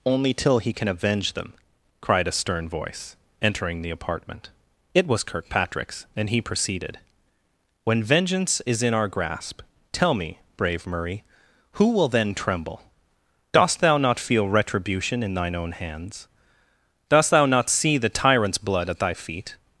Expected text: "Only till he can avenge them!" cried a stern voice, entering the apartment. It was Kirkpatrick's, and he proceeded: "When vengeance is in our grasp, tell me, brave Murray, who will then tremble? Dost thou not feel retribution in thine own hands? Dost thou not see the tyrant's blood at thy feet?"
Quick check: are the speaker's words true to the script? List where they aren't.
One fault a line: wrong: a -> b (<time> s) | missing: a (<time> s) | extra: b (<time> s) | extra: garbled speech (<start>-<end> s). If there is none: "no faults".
no faults